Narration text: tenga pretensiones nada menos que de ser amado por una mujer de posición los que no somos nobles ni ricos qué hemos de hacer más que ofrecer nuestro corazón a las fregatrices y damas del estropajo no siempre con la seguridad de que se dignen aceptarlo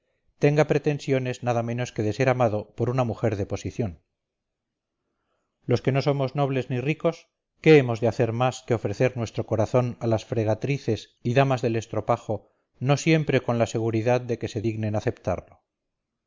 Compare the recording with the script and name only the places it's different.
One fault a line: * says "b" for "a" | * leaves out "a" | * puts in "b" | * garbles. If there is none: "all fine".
all fine